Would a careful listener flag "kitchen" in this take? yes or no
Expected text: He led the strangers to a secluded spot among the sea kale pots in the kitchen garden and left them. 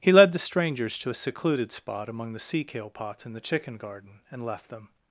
yes